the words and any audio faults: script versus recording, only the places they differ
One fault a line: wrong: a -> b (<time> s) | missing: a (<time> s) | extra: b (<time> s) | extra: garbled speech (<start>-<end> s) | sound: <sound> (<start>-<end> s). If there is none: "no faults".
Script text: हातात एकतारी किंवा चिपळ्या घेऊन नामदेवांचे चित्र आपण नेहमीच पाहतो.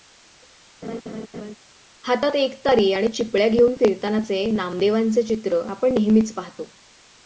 sound: laugh (0.8-1.5 s)
wrong: किंवा -> आणि (2.9 s)
extra: फिरतानाचे (3.7 s)